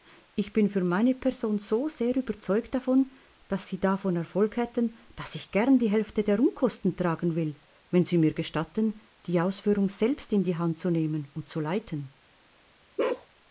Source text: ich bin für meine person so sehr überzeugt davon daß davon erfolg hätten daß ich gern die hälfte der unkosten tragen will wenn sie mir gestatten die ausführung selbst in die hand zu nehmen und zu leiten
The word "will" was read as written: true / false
true